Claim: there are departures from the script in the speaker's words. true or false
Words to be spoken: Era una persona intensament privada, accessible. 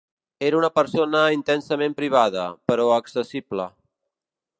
true